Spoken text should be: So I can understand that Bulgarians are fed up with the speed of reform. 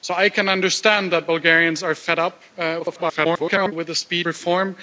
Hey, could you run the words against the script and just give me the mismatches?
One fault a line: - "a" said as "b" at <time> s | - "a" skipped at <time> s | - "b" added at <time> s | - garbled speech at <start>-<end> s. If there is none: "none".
- garbled speech at 2.8-3.7 s
- "of" skipped at 4.3 s